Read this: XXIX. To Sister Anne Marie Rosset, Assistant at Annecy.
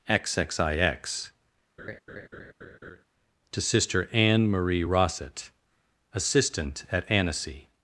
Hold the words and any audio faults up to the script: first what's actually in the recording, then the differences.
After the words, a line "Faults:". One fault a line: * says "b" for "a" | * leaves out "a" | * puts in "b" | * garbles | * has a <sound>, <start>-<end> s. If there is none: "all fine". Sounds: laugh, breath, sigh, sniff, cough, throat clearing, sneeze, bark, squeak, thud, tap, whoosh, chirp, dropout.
XXIX. To Sister Anne Marie Rosset, Assistant at Annecy.
Faults:
* has a laugh, 1.8-3.0 s